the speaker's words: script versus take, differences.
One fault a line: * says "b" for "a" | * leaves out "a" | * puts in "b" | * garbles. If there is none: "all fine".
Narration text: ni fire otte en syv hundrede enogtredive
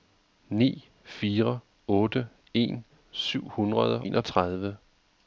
all fine